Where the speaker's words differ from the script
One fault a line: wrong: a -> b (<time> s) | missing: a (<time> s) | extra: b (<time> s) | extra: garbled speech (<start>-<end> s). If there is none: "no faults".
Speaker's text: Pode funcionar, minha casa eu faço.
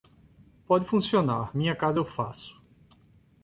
no faults